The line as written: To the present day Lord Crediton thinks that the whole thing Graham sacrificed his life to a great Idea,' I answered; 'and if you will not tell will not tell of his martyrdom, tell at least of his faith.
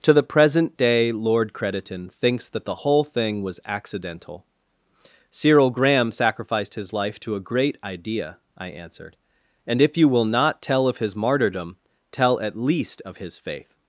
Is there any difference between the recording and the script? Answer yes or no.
yes